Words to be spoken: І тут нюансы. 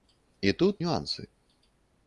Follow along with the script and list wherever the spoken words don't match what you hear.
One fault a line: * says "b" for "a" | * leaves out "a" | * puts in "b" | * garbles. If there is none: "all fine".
all fine